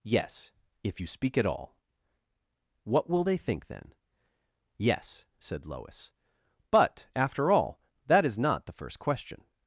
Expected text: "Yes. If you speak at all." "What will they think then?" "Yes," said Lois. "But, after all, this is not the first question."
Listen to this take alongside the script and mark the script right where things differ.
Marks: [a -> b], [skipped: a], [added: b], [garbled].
"Yes. If you speak at all." "What will they think then?" "Yes," said Lois. "But, after all, [this -> that] is not the first question."